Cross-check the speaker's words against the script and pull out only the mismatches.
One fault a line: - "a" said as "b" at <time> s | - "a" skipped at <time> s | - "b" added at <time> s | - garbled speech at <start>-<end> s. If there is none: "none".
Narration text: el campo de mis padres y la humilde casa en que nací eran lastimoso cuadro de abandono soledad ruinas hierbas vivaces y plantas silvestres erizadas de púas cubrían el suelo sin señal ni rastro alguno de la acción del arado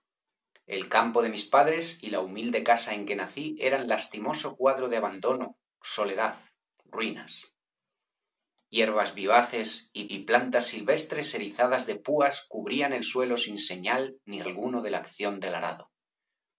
- "y" added at 10.1 s
- "rastro" skipped at 14.4 s